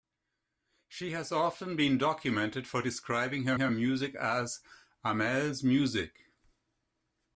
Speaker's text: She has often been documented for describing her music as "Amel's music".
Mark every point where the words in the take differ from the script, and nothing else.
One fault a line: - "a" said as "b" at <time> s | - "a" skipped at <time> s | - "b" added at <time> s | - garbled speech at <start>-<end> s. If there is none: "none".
- "her" added at 3.6 s